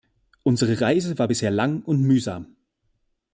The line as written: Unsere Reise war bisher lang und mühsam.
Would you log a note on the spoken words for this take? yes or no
no